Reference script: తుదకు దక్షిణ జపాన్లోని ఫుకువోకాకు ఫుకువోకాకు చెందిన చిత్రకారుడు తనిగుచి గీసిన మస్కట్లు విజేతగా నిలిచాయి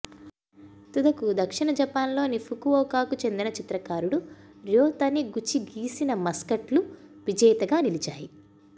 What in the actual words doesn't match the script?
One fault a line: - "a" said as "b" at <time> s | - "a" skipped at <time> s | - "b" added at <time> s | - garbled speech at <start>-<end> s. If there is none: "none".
- "ఫుకువోకాకు" skipped at 3.1 s
- "ర్యో" added at 4.7 s